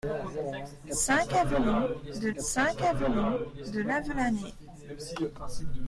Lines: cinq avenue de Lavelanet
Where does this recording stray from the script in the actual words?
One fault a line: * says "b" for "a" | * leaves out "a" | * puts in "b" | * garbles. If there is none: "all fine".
* puts in "cinq avenue de"